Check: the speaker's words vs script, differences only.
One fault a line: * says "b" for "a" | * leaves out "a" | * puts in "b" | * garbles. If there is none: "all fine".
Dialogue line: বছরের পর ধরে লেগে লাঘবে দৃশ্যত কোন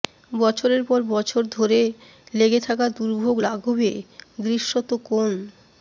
* puts in "বছর"
* puts in "থাকা দুর্ভোগ"